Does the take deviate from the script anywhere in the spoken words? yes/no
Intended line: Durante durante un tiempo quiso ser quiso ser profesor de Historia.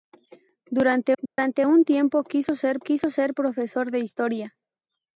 no